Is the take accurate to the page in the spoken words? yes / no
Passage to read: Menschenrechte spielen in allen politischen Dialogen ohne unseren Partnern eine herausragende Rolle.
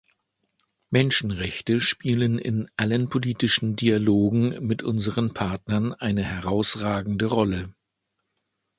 no